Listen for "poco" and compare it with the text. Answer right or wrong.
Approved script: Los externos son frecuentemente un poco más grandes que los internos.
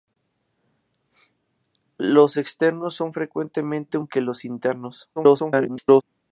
wrong